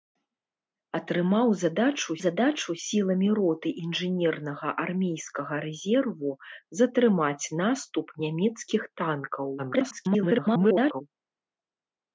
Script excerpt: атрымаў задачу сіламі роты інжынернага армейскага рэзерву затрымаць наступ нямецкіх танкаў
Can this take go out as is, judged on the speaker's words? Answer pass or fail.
fail